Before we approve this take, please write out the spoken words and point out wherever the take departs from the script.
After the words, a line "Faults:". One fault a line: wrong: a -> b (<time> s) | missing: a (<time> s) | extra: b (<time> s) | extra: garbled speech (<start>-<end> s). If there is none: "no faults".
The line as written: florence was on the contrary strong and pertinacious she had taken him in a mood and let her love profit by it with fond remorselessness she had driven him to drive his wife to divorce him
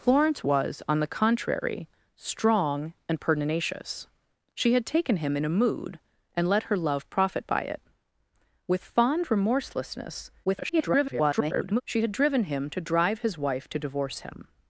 florence was on the contrary strong and pertinacious she had taken him in a mood and let her love profit by it with fond remorselessness [garbled] she had driven him to drive his wife to divorce him
Faults:
extra: garbled speech (10.4-11.8 s)